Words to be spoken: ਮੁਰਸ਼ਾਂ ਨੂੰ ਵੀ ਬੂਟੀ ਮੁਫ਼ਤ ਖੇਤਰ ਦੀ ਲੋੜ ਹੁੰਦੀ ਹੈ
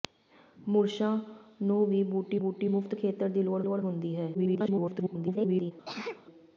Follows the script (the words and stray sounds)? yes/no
no